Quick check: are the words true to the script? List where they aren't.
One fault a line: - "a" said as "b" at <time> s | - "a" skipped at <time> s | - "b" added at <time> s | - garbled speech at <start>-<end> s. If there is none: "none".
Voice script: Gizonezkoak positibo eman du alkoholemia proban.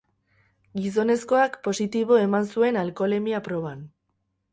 - "du" said as "zuen" at 2.5 s